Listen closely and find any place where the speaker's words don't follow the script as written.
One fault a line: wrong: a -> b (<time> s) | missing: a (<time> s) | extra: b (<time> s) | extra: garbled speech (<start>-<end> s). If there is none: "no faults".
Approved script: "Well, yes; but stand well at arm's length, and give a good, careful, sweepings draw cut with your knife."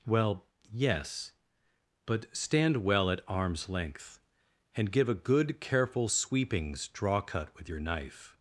no faults